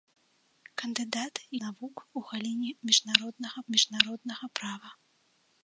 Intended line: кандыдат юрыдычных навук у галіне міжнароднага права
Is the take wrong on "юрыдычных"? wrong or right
wrong